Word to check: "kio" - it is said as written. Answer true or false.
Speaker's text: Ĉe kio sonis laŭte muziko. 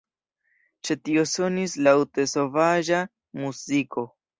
false